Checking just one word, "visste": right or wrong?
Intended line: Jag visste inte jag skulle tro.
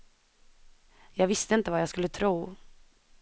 right